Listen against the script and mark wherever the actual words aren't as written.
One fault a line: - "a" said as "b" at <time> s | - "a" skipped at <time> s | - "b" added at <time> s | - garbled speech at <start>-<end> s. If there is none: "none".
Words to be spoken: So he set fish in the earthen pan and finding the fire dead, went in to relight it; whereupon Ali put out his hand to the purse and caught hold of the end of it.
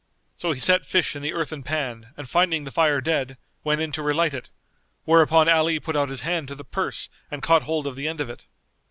none